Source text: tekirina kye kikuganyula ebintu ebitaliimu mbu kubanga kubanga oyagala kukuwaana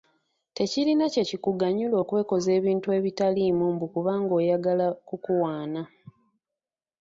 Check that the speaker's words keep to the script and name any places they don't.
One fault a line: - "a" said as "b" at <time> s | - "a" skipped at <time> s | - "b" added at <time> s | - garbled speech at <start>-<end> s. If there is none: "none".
- "okwekoza" added at 2.0 s
- "kubanga" skipped at 4.3 s